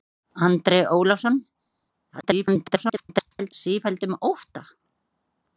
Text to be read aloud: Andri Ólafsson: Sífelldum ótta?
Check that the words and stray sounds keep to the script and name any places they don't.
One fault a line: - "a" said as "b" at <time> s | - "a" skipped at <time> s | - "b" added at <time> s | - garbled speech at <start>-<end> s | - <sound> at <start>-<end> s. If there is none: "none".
- garbled speech at 2.1-3.5 s